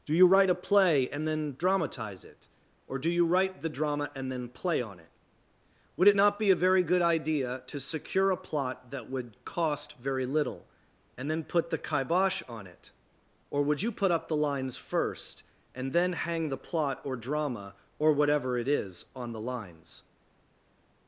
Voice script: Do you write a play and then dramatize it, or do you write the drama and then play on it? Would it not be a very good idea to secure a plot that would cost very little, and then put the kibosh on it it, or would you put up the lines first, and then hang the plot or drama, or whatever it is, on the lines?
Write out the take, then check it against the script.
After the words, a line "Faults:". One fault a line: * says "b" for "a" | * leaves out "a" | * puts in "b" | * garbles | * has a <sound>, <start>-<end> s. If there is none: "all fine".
Do you write a play and then dramatize it, or do you write the drama and then play on it? Would it not be a very good idea to secure a plot that would cost very little, and then put the kibosh on it, or would you put up the lines first, and then hang the plot or drama, or whatever it is, on the lines?
Faults:
* leaves out "it"